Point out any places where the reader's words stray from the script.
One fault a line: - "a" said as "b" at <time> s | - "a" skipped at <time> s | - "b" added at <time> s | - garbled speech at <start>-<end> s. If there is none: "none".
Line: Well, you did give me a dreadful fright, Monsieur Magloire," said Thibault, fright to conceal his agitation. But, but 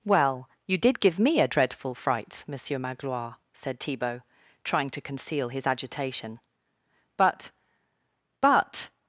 - "fright" said as "trying" at 4.6 s